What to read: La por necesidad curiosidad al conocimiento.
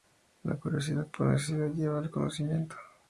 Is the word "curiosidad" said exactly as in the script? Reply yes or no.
no